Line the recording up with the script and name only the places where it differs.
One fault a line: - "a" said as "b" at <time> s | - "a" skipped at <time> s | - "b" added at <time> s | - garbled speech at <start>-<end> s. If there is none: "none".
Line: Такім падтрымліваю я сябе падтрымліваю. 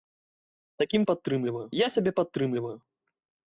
none